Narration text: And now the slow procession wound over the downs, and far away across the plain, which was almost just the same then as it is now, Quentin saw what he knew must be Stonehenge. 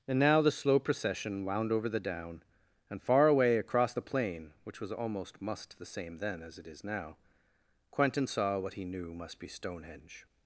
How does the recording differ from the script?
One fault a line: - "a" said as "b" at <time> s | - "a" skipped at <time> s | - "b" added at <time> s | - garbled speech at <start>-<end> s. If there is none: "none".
- "downs" said as "down" at 2.0 s
- "just" said as "must" at 5.4 s